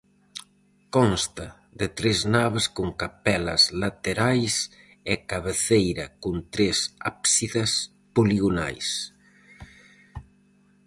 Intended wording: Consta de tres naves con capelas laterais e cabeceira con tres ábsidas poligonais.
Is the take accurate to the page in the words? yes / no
yes